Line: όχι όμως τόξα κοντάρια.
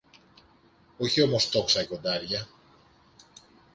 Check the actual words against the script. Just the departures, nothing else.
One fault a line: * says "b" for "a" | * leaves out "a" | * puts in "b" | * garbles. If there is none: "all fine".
all fine